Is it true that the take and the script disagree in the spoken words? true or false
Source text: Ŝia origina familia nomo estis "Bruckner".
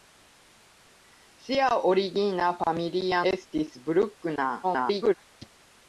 true